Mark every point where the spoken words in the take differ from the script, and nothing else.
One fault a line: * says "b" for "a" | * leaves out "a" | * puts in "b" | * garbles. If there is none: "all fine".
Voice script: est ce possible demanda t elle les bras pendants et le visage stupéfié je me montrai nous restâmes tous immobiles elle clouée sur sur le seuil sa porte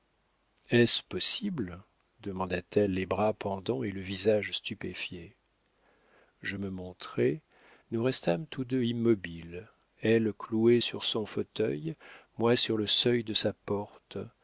* puts in "deux"
* puts in "son fauteuil moi"
* puts in "de"